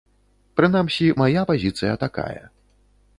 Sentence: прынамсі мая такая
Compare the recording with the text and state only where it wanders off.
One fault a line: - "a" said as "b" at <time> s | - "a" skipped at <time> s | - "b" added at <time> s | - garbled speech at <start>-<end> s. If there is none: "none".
- "пазіцыя" added at 1.5 s